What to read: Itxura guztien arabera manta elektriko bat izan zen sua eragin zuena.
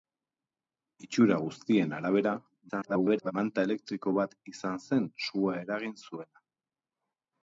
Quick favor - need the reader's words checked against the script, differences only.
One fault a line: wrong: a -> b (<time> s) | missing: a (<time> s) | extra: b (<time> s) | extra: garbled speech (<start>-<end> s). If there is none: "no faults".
extra: garbled speech (2.7-3.3 s)